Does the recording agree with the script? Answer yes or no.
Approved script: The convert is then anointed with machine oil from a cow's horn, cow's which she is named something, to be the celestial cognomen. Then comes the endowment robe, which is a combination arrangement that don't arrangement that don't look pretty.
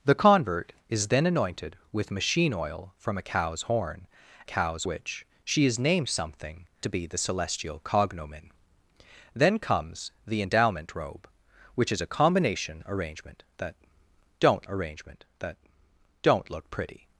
yes